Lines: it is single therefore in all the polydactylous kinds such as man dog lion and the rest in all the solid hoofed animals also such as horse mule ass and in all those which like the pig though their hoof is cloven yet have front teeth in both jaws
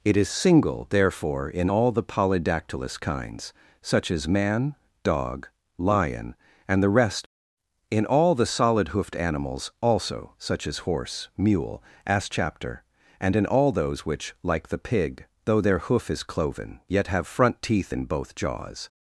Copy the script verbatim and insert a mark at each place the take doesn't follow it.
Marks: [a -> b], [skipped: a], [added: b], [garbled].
it is single therefore in all the polydactylous kinds such as man dog lion and the rest in all the solid hoofed animals also such as horse mule ass [added: chapter] and in all those which like the pig though their hoof is cloven yet have front teeth in both jaws